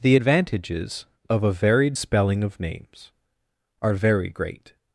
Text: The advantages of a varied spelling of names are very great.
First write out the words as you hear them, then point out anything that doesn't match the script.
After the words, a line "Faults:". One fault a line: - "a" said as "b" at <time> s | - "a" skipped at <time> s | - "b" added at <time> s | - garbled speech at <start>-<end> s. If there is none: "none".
The advantages of a varied spelling of names are very great.
Faults:
none